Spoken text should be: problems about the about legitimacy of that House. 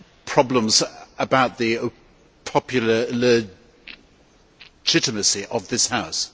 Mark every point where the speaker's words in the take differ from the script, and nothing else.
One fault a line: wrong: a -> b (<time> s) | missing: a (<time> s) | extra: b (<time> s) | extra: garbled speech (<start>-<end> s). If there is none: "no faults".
wrong: about -> popular (2.5 s)
wrong: that -> this (5.7 s)